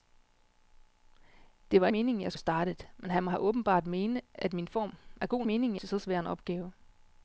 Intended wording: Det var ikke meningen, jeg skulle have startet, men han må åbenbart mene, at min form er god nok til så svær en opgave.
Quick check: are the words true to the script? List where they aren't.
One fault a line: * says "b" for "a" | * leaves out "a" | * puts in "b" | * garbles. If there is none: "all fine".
* leaves out "ikke"
* leaves out "skulle"
* says "meningen" for "nok"